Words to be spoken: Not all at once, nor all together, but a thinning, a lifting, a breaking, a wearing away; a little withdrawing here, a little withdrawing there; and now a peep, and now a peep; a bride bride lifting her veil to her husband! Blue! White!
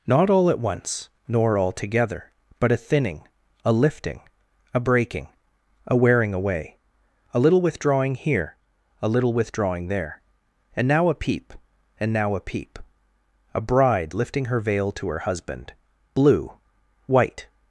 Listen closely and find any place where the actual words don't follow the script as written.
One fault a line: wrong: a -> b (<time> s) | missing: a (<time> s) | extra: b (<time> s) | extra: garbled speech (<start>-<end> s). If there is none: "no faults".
missing: bride (14.2 s)